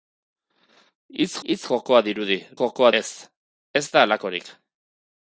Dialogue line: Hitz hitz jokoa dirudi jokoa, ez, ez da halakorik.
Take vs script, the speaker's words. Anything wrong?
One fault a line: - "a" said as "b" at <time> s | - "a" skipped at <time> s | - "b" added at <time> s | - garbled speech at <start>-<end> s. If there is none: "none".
none